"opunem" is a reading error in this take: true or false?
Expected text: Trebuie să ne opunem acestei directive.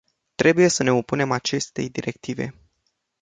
false